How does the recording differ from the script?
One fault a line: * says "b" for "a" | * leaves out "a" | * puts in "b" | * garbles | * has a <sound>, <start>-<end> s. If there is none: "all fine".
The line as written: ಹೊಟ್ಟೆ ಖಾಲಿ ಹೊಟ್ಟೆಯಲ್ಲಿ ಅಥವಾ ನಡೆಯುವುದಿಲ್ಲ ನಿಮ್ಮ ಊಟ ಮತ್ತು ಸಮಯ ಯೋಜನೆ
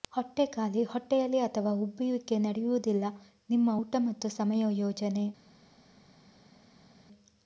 * puts in "ಉಬ್ಬುವಿಕೆ"